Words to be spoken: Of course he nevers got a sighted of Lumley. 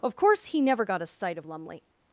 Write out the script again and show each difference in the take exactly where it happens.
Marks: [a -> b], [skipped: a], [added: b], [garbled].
Of course he [nevers -> never] got a [sighted -> sight] of Lumley.